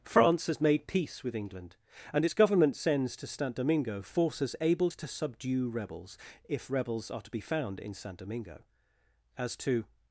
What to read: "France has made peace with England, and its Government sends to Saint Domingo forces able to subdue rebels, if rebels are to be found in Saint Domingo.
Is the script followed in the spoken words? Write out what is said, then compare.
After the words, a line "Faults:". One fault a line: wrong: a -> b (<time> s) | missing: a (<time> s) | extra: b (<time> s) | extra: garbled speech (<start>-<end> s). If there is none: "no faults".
"France has made peace with England, and its Government sends to Saint Domingo forces able to subdue rebels, if rebels are to be found in Saint Domingo. As to
Faults:
extra: As to (9.4 s)